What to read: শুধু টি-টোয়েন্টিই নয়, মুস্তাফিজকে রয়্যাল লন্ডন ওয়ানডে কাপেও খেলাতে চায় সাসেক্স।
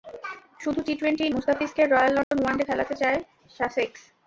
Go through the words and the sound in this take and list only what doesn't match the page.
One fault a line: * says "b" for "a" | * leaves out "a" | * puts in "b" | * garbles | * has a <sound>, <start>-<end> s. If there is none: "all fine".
* leaves out "নয়"
* has a dropout, 2.2-2.3 s
* leaves out "কাপেও"